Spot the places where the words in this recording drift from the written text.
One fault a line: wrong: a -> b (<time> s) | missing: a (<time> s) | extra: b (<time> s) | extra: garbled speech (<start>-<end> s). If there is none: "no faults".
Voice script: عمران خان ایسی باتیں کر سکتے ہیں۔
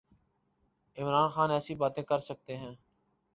no faults